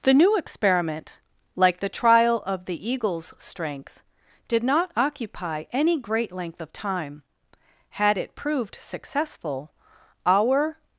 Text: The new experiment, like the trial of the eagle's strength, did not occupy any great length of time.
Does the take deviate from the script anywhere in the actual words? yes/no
yes